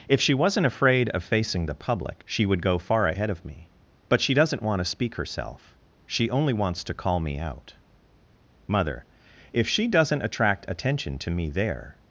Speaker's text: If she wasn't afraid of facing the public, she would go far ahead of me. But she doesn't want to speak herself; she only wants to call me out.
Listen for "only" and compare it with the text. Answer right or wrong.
right